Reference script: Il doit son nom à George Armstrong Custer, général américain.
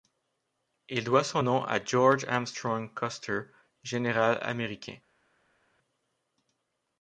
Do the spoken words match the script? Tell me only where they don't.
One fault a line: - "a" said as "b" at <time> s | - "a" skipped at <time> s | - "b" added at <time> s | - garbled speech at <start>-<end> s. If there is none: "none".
none